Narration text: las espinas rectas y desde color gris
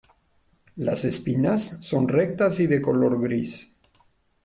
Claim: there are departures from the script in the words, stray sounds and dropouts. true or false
true